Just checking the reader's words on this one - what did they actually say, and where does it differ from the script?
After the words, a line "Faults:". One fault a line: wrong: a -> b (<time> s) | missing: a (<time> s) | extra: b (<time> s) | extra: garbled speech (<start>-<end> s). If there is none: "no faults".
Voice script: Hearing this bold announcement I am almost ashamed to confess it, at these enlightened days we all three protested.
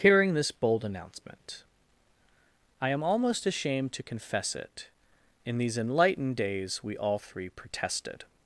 Hearing this bold announcement I am almost ashamed to confess it, in these enlightened days we all three protested.
Faults:
wrong: at -> in (5.5 s)